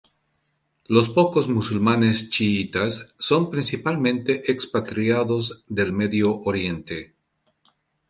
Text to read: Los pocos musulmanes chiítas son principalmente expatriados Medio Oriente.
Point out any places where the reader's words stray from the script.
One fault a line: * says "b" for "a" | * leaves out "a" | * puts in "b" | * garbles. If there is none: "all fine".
* puts in "del"